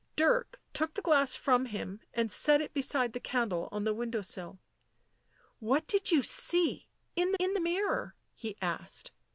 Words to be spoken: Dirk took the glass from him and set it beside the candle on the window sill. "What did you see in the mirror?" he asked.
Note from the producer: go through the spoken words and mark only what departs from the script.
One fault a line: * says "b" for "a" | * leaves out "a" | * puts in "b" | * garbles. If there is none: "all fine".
* puts in "in"